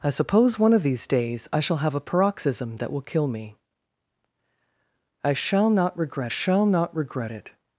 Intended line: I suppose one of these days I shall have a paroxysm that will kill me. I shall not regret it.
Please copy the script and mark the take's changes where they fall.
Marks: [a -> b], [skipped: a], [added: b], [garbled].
I suppose one of these days I shall have a paroxysm that will kill me. I shall not regret [added: shall not regret] it.